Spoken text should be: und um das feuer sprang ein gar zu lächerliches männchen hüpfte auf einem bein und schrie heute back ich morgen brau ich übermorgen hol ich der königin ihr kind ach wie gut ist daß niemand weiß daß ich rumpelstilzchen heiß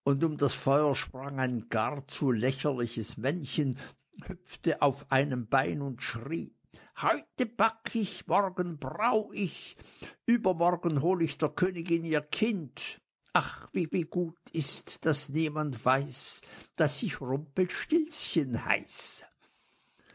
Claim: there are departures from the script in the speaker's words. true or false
true